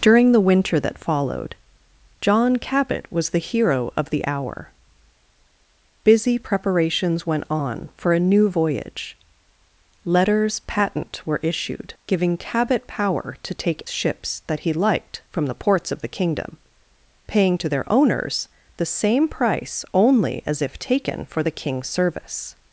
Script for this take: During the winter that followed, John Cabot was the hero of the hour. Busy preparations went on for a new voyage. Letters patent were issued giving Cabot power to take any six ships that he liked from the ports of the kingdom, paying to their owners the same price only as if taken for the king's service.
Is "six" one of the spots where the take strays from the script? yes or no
yes